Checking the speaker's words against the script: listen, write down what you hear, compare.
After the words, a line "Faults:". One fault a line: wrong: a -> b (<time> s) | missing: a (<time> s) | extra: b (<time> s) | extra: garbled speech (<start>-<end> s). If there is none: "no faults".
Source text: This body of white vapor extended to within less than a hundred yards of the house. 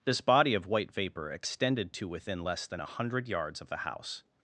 This body of white vapor extended to within less than a hundred yards of the house.
Faults:
no faults